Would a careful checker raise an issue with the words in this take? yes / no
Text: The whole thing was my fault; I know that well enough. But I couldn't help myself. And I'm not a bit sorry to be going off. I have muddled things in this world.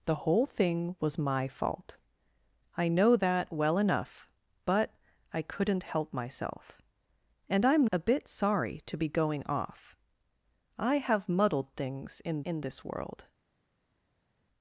yes